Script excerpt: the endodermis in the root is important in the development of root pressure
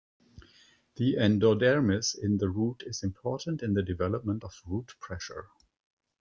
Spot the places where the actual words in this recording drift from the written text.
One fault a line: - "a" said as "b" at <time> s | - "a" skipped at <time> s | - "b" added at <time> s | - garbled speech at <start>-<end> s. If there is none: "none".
none